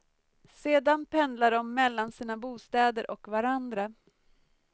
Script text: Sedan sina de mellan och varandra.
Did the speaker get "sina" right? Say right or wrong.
wrong